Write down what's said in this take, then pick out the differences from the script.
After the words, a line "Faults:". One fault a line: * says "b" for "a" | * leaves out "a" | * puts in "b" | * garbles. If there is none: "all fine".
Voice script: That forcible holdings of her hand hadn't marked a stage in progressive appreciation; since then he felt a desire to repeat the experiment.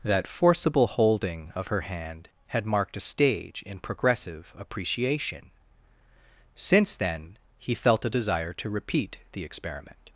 That forcible holding of her hand had marked a stage in progressive appreciation; since then he felt a desire to repeat the experiment.
Faults:
* says "holding" for "holdings"
* says "had" for "hadn't"